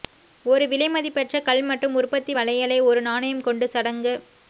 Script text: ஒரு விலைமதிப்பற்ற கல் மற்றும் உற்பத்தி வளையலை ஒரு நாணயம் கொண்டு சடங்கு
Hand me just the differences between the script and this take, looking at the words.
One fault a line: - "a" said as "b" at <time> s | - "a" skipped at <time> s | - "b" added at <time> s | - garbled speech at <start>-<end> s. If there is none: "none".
none